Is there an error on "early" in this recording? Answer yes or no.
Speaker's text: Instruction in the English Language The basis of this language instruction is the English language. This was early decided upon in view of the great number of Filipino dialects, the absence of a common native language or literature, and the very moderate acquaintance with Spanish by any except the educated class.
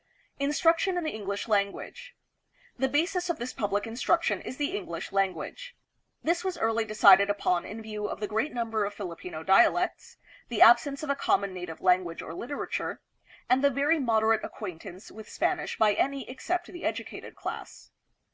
no